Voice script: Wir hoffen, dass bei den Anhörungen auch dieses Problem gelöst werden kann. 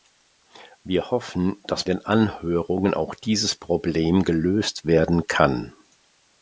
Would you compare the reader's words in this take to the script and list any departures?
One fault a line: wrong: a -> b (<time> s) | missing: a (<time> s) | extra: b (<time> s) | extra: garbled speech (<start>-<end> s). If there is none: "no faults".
missing: bei (1.8 s)